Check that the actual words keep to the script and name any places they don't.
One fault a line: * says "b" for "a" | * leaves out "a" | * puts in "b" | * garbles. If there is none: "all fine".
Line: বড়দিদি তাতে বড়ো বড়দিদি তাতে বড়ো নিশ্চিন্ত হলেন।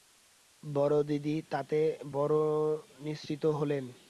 * leaves out "বড়দিদি তাতে বড়ো"